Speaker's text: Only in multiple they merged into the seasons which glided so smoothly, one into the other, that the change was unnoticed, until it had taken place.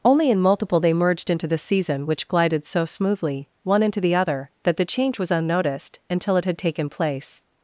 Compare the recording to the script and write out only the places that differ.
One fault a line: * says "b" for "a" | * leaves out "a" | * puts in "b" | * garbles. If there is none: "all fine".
* says "season" for "seasons"